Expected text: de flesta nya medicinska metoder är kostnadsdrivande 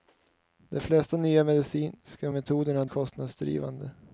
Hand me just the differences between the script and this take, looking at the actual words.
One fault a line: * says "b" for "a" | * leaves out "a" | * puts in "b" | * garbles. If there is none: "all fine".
all fine